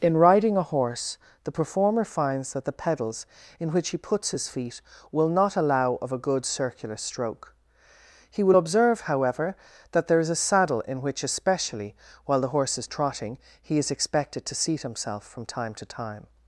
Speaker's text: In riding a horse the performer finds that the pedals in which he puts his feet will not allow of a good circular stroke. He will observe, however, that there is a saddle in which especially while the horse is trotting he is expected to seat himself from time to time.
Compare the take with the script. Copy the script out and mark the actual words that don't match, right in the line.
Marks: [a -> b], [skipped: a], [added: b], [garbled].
In riding a horse the performer finds that the pedals in which he puts his feet will not allow of a good circular stroke. He will observe, however, that there is a saddle in which especially while the horse is trotting he is expected to seat himself from time to time.